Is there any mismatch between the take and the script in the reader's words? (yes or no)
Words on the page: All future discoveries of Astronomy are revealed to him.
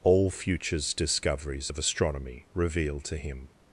yes